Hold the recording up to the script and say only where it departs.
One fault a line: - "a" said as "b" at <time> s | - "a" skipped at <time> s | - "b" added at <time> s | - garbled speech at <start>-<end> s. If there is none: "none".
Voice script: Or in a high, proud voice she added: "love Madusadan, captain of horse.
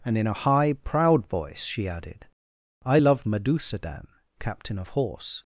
- "Or" said as "And" at 0.0 s
- "I" added at 2.8 s